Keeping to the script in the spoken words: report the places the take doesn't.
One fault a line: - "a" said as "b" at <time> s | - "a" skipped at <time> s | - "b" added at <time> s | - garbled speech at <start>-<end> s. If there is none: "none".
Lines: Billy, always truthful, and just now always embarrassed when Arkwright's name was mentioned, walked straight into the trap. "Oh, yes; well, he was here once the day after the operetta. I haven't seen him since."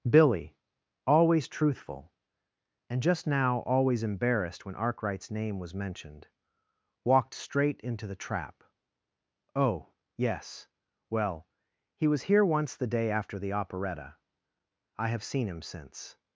- "haven't" said as "have" at 15.1 s